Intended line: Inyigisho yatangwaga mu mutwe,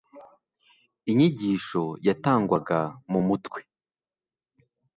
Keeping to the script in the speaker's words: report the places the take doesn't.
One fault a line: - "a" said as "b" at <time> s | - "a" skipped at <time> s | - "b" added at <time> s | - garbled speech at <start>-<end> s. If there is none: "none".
none